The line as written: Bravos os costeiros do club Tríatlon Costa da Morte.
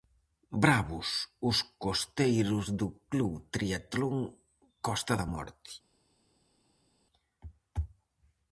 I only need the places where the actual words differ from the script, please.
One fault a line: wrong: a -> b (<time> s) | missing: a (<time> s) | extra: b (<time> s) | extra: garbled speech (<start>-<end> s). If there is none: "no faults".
no faults